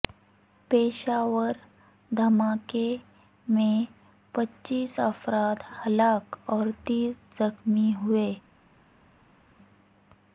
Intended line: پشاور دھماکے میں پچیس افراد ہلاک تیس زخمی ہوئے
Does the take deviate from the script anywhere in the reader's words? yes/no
yes